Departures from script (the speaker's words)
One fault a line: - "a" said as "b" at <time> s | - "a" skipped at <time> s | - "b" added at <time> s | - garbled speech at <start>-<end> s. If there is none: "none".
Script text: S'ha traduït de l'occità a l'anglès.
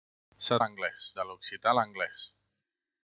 - "traduït" said as "l'anglès" at 0.6 s